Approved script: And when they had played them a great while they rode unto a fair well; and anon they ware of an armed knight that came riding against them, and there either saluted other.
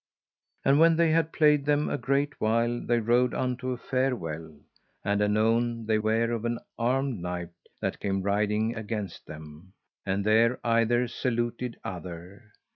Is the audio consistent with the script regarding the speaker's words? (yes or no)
yes